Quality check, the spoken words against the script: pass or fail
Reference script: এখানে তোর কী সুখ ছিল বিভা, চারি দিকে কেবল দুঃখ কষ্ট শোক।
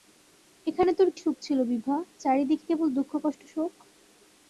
fail